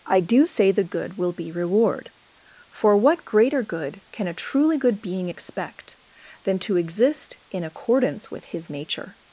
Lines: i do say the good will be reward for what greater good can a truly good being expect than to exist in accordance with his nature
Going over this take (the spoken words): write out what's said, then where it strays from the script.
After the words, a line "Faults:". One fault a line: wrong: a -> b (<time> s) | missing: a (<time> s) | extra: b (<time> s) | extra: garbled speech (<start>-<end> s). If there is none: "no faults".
i do say the good will be reward for what greater good can a truly good being expect than to exist in accordance with his nature
Faults:
no faults